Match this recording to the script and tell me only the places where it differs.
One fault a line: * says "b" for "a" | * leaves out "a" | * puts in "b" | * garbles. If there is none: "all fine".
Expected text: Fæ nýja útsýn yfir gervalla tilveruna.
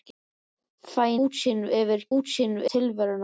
* leaves out "nýja"
* says "útsýn" for "gervalla"